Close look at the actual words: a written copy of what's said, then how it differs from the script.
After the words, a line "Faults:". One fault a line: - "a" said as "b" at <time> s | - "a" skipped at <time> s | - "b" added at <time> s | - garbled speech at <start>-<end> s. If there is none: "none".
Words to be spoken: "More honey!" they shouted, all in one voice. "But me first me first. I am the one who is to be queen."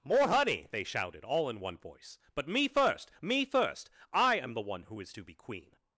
"More honey!" they shouted, all in one voice. "But me first me first. I am the one who is to be queen."
Faults:
none